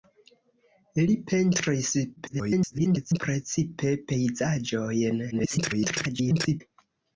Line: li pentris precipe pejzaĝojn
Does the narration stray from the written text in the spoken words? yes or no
yes